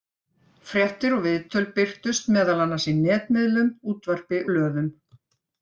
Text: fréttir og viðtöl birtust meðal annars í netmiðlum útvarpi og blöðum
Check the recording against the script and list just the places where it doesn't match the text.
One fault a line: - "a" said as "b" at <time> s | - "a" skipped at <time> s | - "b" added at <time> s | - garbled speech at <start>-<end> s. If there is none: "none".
- "og" skipped at 4.5 s